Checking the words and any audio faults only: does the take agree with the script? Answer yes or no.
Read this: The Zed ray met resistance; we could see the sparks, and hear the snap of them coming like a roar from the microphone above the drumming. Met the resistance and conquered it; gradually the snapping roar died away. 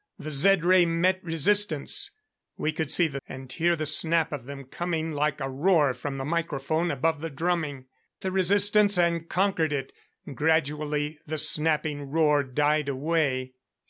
no